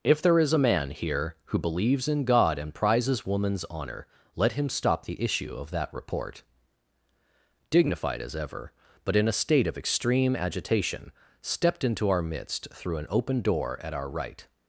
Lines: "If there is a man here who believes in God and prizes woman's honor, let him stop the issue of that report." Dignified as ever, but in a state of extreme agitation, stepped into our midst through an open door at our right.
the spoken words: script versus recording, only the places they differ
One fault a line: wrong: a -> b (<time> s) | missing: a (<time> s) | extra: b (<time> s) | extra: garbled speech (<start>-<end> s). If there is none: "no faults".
no faults